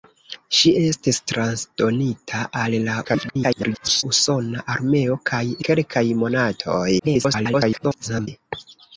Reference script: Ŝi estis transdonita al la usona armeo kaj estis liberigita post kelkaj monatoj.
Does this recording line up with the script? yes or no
no